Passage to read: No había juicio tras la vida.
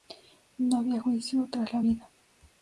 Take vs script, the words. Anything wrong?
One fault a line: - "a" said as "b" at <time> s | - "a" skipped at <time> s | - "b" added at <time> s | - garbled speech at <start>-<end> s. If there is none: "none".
none